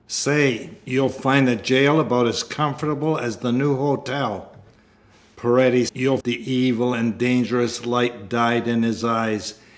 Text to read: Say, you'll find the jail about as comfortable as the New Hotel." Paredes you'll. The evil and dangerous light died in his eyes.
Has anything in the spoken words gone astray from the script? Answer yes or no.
no